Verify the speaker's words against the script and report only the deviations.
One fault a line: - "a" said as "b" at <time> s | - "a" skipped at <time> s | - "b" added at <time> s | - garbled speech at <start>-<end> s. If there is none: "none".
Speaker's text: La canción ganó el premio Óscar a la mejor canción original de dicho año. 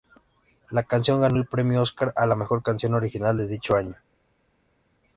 none